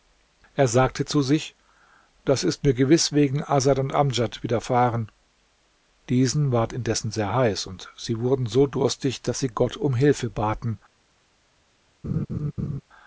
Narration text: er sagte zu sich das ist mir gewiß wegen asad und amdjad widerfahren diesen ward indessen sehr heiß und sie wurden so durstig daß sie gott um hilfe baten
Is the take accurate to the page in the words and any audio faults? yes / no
no